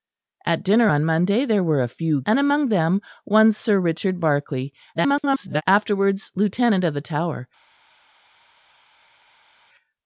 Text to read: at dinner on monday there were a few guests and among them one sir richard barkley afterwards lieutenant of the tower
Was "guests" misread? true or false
true